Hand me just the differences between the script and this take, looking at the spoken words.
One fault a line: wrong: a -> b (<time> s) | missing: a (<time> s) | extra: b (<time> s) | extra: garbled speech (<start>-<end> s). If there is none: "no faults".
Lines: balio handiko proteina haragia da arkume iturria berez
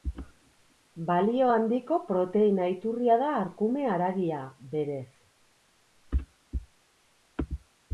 wrong: haragia -> iturria (2.8 s)
wrong: iturria -> haragia (4.0 s)